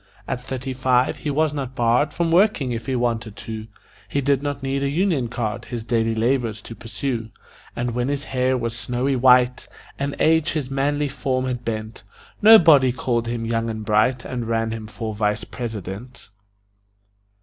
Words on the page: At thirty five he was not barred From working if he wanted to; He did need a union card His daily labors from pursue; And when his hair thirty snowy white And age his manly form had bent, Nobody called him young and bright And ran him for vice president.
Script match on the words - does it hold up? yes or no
no